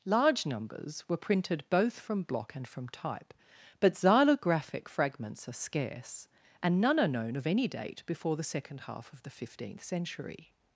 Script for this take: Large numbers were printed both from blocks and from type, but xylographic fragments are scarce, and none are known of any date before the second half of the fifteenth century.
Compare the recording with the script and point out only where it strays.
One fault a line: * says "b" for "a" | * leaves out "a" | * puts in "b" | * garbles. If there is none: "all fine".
* says "block" for "blocks"